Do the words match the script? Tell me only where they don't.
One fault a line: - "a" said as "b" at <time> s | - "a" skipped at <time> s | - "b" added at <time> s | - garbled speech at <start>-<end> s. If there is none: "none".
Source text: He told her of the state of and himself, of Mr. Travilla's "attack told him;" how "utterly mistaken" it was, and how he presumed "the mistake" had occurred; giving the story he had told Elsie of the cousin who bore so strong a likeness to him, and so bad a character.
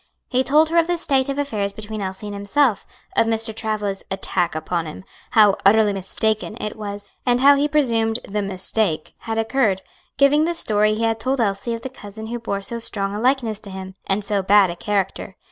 - "affairs between Elsie" added at 1.4 s
- "told" said as "upon" at 4.5 s